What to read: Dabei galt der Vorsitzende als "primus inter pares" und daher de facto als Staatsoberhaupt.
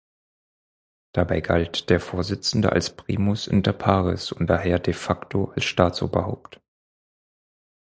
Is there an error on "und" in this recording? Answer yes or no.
no